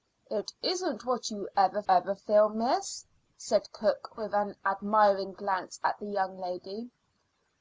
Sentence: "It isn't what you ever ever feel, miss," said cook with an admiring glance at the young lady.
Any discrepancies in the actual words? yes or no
no